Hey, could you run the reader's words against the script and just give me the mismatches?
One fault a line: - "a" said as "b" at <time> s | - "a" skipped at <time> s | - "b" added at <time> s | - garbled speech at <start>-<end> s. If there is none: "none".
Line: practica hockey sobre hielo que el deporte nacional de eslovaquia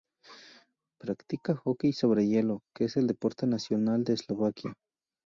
- "es" added at 2.9 s